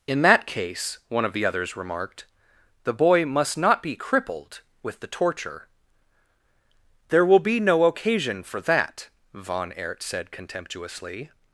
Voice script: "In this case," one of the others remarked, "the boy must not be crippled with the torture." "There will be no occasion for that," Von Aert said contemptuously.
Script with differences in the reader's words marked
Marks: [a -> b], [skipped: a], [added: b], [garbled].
"In [this -> that] case," one of the others remarked, "the boy must not be crippled with the torture." "There will be no occasion for that," Von Aert said contemptuously.